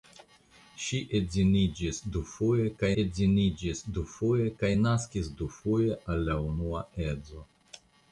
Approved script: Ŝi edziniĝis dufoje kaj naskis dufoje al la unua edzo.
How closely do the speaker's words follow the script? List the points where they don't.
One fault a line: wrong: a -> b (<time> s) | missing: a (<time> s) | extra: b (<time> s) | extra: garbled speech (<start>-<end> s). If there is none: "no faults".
extra: edziniĝis dufoje kaj (3.0 s)